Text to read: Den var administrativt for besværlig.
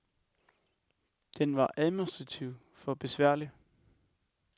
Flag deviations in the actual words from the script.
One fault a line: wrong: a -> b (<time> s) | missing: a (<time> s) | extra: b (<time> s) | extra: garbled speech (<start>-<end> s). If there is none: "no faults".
no faults